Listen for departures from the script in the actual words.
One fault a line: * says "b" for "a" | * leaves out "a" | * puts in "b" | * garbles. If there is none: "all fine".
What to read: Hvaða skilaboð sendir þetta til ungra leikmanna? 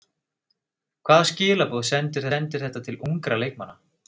* puts in "sendir"